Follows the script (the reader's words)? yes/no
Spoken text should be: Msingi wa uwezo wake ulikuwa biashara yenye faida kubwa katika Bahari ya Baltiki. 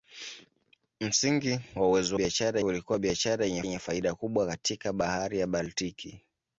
no